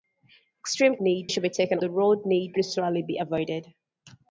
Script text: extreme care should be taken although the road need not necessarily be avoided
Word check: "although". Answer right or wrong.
wrong